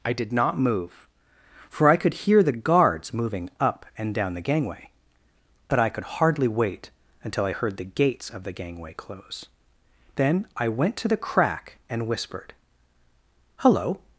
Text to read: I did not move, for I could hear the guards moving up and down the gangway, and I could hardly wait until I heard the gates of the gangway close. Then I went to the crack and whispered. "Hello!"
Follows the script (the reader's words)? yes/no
no